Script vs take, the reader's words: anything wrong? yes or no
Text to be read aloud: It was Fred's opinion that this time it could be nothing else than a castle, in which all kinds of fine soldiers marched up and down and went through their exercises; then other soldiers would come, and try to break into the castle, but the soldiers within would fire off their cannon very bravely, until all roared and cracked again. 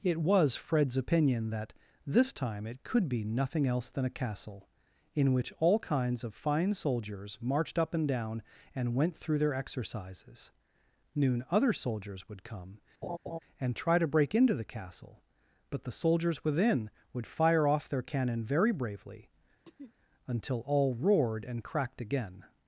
yes